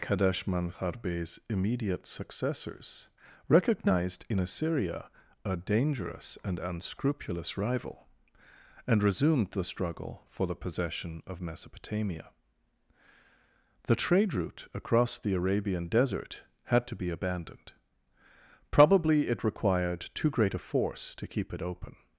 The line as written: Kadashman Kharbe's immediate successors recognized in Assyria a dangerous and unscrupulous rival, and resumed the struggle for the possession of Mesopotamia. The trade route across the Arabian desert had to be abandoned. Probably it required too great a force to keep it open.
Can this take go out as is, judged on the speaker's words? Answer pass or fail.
pass